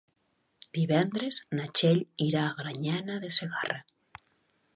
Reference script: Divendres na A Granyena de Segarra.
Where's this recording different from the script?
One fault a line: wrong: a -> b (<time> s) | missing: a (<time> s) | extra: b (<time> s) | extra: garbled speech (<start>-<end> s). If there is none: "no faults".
extra: Txell irà (1.8 s)